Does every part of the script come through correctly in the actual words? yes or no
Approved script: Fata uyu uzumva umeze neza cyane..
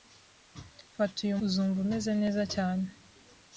yes